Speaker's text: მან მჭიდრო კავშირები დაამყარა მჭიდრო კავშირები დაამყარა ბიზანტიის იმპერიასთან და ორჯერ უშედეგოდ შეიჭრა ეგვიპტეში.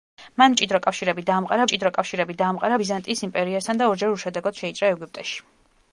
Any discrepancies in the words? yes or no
no